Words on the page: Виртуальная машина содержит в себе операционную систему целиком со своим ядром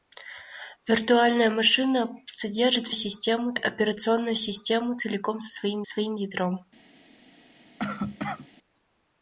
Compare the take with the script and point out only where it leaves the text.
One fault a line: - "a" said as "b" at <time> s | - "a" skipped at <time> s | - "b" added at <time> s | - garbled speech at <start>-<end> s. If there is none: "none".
- "себе" said as "систему" at 2.9 s
- "своим" added at 5.8 s